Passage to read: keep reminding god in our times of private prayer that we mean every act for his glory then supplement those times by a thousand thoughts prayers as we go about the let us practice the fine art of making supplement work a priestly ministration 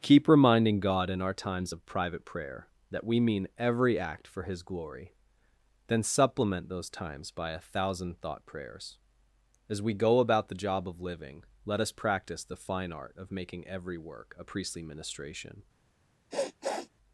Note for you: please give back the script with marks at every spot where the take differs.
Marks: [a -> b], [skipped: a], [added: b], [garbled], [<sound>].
keep reminding god in our times of private prayer that we mean every act for his glory then supplement those times by a thousand [thoughts -> thought] prayers as we go about the [added: job of living] let us practice the fine art of making [supplement -> every] work a priestly ministration [sniff]